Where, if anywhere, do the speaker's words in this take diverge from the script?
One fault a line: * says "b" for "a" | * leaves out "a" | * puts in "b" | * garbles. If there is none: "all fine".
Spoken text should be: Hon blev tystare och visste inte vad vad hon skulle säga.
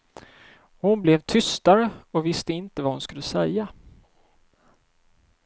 * leaves out "vad"